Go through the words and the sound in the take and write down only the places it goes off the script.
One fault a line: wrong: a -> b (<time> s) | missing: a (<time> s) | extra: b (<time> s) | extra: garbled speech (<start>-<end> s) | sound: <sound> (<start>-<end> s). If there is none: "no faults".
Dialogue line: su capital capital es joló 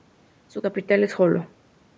missing: capital (1.0 s)